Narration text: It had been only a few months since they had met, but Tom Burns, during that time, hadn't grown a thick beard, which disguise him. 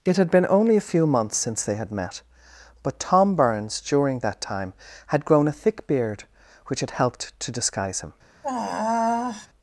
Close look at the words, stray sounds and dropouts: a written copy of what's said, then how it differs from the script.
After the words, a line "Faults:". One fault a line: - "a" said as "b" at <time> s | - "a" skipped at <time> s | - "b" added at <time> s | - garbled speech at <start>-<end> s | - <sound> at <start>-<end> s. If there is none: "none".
It had been only a few months since they had met, but Tom Burns, during that time, had grown a thick beard, which had helped to disguise him.
Faults:
- "hadn't" said as "had" at 5.1 s
- "had helped to" added at 6.8 s
- sigh at 8.4-9.5 s